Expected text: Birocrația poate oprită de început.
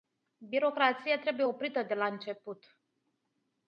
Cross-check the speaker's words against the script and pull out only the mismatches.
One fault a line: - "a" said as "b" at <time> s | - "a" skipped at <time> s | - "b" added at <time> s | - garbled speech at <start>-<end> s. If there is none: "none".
- "poate" said as "trebuie" at 1.2 s
- "la" added at 1.9 s